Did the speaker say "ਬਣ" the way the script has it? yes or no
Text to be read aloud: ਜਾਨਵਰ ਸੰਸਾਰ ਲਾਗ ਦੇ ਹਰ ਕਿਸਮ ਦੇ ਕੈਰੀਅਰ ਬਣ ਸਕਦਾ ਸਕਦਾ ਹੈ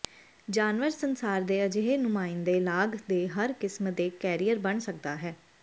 yes